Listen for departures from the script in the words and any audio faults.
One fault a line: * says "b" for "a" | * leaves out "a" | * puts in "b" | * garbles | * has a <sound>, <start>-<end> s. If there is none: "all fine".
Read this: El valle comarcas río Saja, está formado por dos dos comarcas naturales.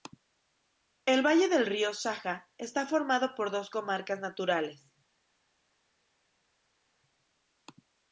* says "del" for "comarcas"
* leaves out "dos"